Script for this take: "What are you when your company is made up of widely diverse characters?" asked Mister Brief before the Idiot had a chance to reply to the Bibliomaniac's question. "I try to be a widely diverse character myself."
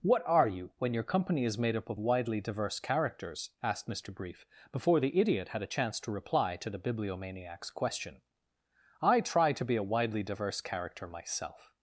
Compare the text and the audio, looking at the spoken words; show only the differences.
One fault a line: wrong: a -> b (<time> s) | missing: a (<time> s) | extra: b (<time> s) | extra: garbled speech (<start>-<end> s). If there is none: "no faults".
no faults